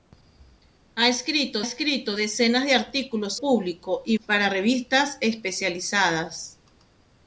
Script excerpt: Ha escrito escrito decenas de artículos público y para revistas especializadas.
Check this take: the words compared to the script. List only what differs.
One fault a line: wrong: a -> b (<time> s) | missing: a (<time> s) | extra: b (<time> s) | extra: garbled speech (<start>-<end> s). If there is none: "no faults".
no faults